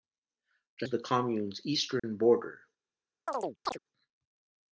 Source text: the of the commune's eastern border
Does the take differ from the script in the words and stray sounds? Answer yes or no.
yes